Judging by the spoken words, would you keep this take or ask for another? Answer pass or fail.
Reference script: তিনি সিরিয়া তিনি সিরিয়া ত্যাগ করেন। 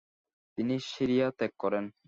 fail